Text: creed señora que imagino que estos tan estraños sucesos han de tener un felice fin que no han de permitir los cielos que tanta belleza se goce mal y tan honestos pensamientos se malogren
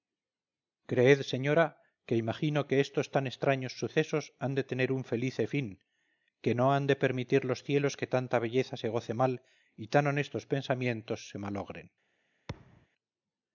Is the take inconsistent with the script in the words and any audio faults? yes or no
yes